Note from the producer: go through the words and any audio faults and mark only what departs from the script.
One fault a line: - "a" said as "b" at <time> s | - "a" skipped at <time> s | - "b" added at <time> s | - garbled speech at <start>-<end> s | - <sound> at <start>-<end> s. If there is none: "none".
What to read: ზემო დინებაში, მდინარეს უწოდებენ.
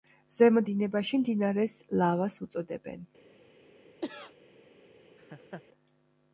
- "ლავას" added at 2.0 s
- cough at 4.0-4.4 s
- laugh at 5.2-5.6 s